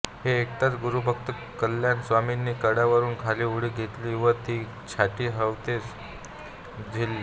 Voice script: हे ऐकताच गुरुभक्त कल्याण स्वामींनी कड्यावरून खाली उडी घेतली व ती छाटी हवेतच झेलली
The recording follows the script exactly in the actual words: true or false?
true